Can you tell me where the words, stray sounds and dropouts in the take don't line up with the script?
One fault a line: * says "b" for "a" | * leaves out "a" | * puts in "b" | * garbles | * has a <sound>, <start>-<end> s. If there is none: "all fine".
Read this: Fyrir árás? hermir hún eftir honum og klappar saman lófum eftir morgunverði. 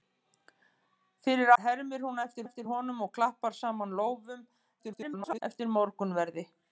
* leaves out "árás"
* puts in "eftir"
* garbles